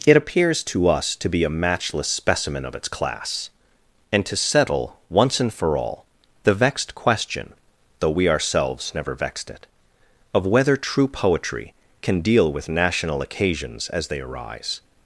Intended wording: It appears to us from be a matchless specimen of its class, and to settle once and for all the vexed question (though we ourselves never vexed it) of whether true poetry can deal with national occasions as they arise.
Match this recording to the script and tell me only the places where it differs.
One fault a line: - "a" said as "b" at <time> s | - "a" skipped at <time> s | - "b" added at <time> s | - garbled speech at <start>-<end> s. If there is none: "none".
- "from" said as "to" at 1.2 s